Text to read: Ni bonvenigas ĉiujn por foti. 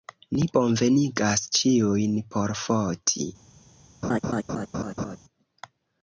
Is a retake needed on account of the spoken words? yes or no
no